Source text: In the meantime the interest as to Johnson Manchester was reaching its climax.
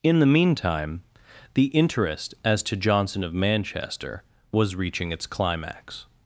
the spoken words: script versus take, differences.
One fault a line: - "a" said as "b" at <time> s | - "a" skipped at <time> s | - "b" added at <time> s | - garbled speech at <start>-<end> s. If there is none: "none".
- "of" added at 3.2 s